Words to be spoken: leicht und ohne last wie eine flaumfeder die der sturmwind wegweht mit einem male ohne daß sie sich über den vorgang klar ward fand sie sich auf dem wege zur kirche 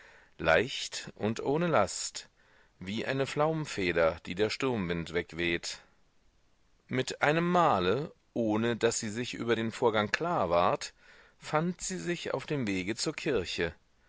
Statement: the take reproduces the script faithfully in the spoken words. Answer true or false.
true